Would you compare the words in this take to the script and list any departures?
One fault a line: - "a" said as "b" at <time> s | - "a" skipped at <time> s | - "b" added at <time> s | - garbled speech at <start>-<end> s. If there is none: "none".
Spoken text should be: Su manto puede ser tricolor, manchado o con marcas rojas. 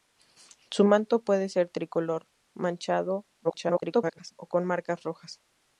- garbled speech at 3.4-4.3 s